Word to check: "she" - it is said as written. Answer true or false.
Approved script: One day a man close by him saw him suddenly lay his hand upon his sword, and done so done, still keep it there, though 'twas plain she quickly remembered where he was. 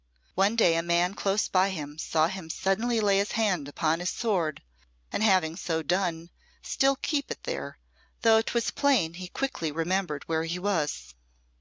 false